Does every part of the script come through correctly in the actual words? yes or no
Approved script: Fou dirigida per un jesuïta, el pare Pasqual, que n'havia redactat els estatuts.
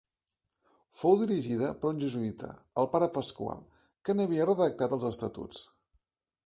yes